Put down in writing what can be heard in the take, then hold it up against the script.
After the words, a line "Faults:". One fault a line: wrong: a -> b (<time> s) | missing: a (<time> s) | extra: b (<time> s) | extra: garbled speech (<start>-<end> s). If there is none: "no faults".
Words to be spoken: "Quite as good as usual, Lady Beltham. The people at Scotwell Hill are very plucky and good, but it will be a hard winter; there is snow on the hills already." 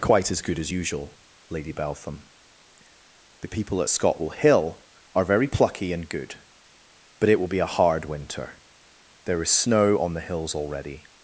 "Quite as good as usual, Lady Beltham. The people at Scotwell Hill are very plucky and good, but it will be a hard winter; there is snow on the hills already."
Faults:
no faults